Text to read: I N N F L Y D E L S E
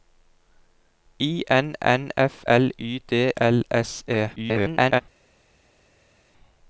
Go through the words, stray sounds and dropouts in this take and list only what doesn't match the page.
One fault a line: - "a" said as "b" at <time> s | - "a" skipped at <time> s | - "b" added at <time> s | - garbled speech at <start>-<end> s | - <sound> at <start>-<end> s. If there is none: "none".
- "E" skipped at 3.3 s
- garbled speech at 4.4-5.0 s